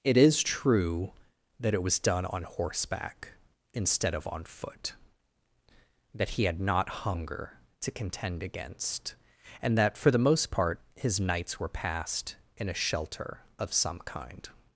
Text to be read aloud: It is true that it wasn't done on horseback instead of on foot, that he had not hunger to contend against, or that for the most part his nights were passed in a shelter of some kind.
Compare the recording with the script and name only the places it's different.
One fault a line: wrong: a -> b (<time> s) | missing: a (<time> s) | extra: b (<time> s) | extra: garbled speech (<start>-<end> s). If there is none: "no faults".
wrong: wasn't -> was (1.8 s)
wrong: or -> and (9.6 s)